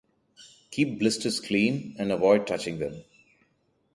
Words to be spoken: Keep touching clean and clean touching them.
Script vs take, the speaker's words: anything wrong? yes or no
yes